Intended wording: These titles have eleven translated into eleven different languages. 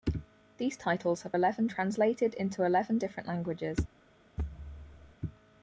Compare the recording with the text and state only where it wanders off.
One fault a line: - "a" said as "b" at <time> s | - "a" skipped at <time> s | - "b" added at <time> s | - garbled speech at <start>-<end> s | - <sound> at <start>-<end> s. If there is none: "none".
- thud at 4.4-5.1 s